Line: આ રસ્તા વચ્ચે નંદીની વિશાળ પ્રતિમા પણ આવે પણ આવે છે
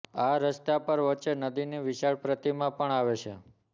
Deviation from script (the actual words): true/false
true